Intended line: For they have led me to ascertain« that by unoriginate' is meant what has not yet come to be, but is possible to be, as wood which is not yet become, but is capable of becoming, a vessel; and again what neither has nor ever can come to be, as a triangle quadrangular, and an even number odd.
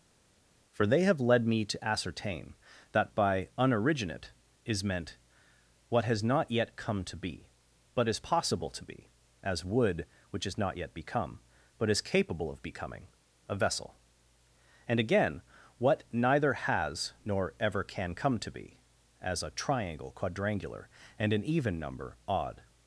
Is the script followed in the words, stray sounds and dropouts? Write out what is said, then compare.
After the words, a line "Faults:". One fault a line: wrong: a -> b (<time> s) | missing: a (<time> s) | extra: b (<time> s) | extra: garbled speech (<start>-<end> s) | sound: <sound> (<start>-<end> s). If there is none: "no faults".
For they have led me to ascertain« that by unoriginate' is meant what has not yet come to be, but is possible to be, as wood which is not yet become, but is capable of becoming, a vessel; and again what neither has nor ever can come to be, as a triangle quadrangular, and an even number odd.
Faults:
no faults